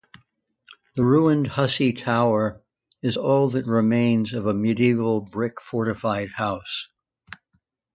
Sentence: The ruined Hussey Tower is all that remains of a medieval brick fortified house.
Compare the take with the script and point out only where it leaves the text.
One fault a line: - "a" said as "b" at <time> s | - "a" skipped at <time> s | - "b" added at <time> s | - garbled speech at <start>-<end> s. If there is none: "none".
none